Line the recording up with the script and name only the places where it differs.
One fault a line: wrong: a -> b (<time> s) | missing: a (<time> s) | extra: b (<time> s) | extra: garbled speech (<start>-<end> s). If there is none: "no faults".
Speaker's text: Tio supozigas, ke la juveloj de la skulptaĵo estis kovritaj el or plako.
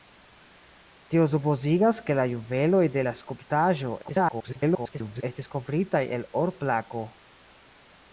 extra: garbled speech (4.0-5.2 s)